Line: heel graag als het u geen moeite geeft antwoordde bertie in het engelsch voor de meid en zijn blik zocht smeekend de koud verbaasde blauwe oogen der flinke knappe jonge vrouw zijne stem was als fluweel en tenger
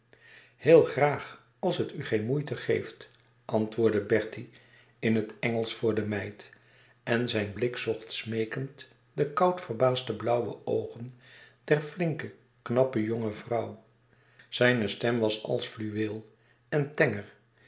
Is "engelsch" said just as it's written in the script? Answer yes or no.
yes